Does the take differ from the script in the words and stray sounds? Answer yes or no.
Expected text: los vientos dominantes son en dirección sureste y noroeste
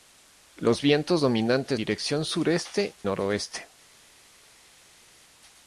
yes